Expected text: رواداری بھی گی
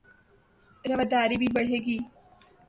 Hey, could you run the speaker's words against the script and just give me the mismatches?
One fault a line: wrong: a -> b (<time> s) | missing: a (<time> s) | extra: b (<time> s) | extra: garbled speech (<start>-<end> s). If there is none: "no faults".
extra: بڑھے (1.6 s)